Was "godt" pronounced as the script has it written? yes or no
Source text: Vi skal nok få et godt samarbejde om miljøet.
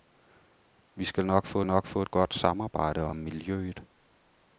yes